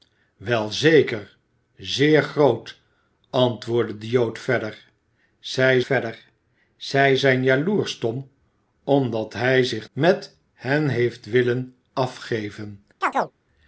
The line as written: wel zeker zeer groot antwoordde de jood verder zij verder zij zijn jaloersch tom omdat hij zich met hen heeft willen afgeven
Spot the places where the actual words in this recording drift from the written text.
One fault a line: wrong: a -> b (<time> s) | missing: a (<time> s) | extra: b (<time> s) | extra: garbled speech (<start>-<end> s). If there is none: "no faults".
no faults